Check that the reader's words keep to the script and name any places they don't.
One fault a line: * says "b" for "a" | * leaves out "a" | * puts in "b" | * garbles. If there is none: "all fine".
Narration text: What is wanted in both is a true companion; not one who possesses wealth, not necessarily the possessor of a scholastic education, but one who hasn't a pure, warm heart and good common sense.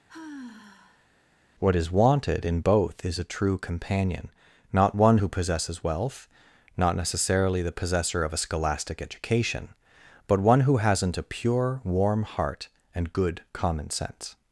all fine